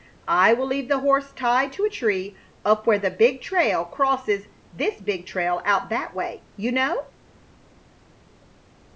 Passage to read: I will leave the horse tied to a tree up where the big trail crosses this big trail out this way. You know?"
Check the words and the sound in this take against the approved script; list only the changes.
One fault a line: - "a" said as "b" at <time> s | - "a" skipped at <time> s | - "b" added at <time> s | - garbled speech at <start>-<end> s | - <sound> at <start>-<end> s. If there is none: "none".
- "this" said as "that" at 5.9 s